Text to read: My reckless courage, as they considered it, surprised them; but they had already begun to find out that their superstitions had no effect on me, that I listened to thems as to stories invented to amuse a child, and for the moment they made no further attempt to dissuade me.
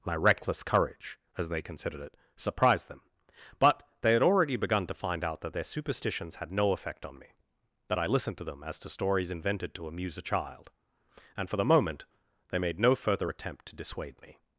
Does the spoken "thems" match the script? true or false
false